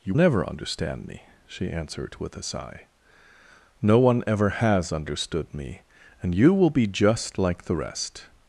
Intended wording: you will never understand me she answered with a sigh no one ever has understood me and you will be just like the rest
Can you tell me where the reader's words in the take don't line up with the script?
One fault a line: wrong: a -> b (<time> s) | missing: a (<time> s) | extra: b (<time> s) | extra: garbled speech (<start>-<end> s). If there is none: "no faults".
missing: will (0.1 s)